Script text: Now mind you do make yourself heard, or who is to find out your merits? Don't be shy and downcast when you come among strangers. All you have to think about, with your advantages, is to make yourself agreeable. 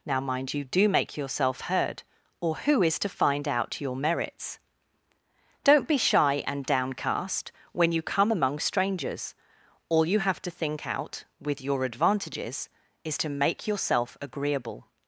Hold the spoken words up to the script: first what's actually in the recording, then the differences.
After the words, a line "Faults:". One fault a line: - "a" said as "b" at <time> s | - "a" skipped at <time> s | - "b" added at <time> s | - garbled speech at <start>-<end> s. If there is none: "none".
Now mind you do make yourself heard, or who is to find out your merits? Don't be shy and downcast when you come among strangers. All you have to think out, with your advantages, is to make yourself agreeable.
Faults:
- "about" said as "out" at 10.8 s